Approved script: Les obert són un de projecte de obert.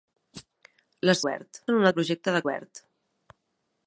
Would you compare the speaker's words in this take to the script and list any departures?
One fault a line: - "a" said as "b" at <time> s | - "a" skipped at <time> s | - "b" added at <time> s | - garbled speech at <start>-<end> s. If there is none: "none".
none